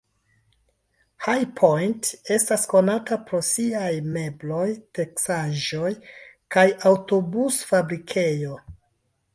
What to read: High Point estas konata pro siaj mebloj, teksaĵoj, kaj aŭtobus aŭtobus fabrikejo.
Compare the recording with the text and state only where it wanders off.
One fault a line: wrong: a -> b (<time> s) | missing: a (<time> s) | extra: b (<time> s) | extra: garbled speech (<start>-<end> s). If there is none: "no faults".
missing: aŭtobus (7.6 s)